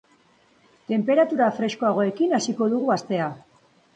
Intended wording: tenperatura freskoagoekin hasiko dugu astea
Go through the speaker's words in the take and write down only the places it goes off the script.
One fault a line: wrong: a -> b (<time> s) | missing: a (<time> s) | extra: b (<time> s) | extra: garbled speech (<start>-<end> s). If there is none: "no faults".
no faults